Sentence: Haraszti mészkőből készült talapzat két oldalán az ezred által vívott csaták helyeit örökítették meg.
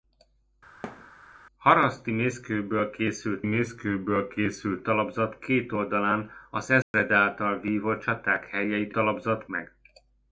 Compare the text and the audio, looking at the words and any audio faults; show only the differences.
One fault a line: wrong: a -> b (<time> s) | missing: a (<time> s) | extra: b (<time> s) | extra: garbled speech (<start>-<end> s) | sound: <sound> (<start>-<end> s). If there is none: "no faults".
sound: thud (0.8-1.1 s)
extra: mészkőből készült (3.4 s)
sound: dropout (6.8-6.9 s)
wrong: örökítették -> talapzat (8.9 s)